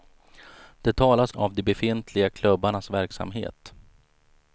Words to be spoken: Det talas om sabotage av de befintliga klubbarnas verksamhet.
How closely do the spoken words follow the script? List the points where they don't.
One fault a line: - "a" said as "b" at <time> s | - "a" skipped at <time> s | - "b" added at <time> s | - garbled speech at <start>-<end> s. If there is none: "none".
- "om sabotage" skipped at 1.3 s